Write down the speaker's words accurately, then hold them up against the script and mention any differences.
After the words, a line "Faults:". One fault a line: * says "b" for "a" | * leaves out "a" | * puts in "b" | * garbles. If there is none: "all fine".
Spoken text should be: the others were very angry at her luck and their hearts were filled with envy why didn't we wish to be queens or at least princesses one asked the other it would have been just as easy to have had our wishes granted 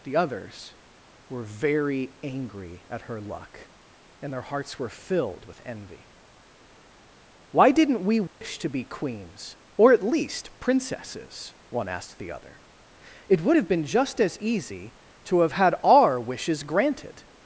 the others were very angry at her luck and their hearts were filled with envy why didn't we wish to be queens or at least princesses one asked the other it would have been just as easy to have had our wishes granted
Faults:
all fine